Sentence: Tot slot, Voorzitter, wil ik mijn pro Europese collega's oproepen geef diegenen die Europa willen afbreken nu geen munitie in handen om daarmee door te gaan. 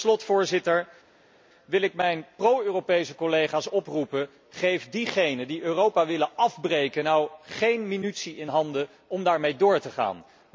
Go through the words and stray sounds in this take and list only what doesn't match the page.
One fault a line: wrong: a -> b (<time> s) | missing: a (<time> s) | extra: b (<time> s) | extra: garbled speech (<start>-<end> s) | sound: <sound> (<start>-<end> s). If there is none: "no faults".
no faults